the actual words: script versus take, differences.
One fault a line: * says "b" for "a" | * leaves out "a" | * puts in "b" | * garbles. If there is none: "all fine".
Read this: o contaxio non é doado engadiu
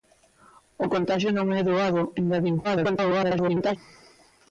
* garbles